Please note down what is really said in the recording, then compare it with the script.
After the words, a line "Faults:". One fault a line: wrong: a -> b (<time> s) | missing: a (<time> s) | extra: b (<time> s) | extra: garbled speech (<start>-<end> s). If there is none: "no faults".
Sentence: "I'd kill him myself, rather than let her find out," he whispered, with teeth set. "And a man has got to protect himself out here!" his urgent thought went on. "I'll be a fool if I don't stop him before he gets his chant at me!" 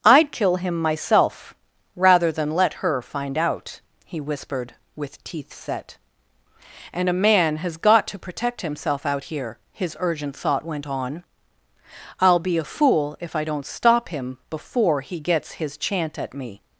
"I'd kill him myself, rather than let her find out," he whispered, with teeth set. "And a man has got to protect himself out here!" his urgent thought went on. "I'll be a fool if I don't stop him before he gets his chant at me!"
Faults:
no faults